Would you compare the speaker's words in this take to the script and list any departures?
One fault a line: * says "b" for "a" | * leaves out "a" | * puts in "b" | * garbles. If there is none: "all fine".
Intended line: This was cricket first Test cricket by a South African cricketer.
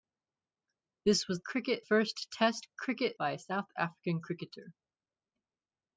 all fine